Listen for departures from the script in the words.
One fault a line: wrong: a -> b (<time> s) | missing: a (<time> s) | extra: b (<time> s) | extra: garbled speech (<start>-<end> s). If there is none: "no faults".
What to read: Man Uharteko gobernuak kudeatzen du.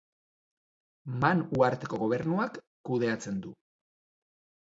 no faults